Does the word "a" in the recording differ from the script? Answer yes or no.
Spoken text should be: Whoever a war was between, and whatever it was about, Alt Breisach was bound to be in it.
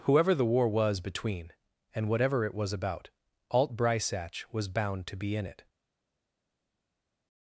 yes